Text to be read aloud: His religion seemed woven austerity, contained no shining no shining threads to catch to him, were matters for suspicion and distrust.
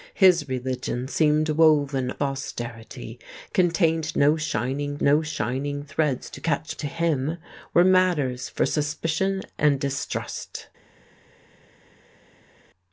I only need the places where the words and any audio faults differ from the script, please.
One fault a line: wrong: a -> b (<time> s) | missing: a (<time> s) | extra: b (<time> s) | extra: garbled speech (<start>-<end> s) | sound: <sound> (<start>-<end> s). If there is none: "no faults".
no faults